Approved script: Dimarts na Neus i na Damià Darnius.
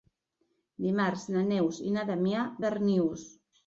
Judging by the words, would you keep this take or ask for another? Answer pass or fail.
pass